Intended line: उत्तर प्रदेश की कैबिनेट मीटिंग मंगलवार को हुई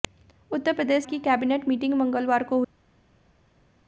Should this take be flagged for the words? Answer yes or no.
no